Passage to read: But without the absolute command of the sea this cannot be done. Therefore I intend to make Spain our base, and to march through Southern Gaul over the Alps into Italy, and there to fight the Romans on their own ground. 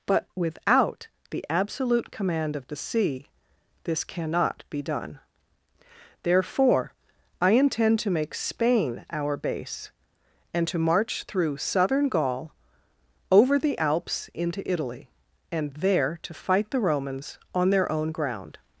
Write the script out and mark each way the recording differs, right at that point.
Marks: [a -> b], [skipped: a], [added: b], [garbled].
But without the absolute command of the sea this cannot be done. Therefore I intend to make Spain our base, and to march through Southern Gaul over the Alps into Italy, and there to fight the Romans on their own ground.